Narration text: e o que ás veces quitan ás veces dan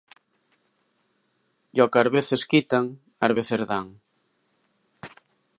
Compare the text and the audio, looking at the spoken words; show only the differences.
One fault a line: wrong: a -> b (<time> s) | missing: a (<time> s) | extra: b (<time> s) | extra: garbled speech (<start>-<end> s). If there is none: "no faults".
no faults